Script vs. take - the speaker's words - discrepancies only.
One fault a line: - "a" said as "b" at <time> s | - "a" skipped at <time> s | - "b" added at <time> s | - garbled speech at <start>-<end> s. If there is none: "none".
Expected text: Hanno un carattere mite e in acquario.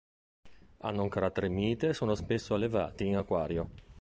- "sono spesso allevati" added at 1.9 s